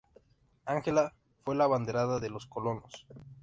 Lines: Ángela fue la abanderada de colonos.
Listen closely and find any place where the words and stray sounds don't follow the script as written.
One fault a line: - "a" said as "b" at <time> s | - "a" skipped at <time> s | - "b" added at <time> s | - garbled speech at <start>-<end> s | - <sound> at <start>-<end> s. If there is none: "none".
- "los" added at 2.3 s